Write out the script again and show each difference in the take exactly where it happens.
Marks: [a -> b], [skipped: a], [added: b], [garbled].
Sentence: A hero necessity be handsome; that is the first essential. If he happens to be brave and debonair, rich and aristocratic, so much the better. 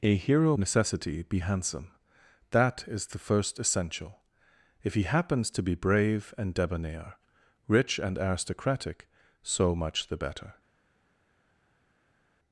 A hero necessity be handsome; that is the first essential. If he happens to be brave and debonair, rich and aristocratic, so much the better.